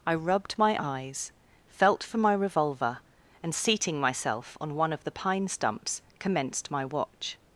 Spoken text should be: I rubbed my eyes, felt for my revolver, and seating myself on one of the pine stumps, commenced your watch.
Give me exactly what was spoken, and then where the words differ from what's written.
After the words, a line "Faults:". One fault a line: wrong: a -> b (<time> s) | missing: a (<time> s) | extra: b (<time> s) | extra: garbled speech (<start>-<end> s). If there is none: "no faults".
I rubbed my eyes, felt for my revolver, and seating myself on one of the pine stumps, commenced my watch.
Faults:
wrong: your -> my (6.7 s)